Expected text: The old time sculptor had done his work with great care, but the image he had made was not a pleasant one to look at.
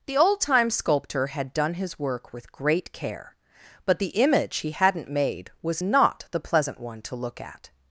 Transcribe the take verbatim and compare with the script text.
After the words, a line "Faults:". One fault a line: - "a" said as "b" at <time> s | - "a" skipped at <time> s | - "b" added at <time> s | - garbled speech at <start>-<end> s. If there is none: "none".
The old time sculptor had done his work with great care, but the image he hadn't made was not the pleasant one to look at.
Faults:
- "had" said as "hadn't" at 4.7 s
- "a" said as "the" at 6.3 s